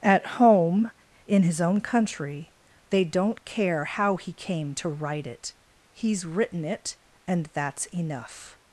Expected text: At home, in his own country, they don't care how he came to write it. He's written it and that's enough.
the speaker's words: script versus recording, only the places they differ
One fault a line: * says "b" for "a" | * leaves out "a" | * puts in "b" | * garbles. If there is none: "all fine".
all fine